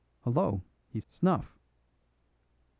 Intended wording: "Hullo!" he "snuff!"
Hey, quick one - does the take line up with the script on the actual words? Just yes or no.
yes